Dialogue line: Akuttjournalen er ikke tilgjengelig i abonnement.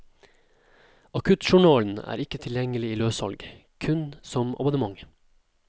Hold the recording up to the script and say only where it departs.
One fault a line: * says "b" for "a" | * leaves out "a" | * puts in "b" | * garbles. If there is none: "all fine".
* puts in "løssalg kun som"